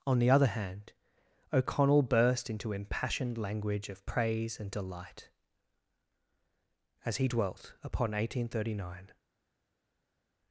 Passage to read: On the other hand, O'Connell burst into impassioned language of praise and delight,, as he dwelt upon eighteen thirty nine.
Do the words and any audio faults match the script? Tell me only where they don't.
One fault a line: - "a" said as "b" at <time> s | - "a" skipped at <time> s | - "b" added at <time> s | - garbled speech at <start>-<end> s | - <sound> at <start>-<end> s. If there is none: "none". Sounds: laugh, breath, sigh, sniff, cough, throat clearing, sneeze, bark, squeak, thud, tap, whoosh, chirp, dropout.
none